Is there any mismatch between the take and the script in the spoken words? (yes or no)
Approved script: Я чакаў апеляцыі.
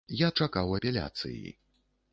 no